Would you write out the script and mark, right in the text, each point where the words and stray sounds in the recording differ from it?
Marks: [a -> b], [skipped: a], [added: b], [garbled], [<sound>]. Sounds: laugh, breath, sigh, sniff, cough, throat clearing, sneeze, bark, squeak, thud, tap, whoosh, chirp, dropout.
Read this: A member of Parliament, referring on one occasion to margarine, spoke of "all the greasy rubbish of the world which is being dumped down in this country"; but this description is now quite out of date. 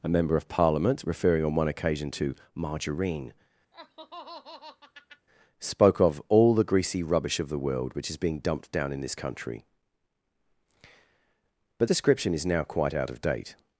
A member of Parliament, referring on one occasion to margarine, [laugh] spoke of "all the greasy rubbish of the world which is being dumped down in this country"; but [skipped: this] description is now quite out of date.